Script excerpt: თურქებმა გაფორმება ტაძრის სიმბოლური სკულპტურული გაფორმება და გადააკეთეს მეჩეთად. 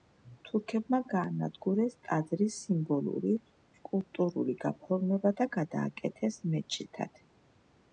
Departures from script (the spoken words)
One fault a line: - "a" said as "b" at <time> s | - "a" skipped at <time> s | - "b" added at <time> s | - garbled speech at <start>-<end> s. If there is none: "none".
- "გაფორმება" said as "გაანადგურეს" at 1.1 s